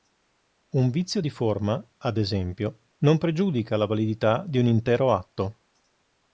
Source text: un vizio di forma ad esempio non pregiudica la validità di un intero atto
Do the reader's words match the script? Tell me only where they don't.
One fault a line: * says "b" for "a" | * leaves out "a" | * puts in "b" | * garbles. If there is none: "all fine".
all fine